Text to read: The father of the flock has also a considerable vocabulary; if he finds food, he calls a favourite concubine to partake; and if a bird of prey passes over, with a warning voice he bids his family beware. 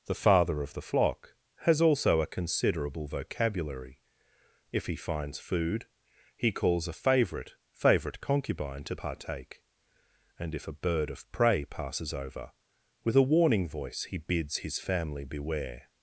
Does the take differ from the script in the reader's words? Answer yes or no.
yes